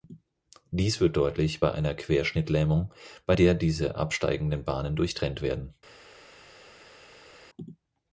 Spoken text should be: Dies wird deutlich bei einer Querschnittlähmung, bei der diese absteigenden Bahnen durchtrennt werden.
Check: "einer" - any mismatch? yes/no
no